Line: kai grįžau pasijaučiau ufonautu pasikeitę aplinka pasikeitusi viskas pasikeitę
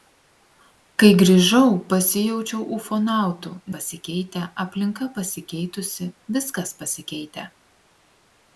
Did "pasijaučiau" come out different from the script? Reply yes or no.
no